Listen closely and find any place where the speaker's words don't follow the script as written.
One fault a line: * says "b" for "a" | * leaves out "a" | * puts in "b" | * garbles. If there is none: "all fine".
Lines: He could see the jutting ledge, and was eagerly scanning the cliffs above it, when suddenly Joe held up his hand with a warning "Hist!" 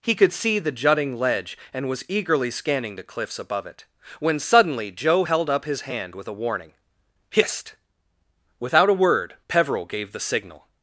* puts in "Without a word Peveril gave the signal"